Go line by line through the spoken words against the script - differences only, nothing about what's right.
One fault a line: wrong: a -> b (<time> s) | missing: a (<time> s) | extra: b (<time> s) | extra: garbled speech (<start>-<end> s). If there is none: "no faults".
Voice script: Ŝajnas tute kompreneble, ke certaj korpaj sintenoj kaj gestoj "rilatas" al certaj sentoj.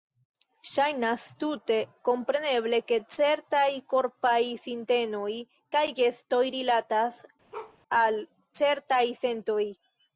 no faults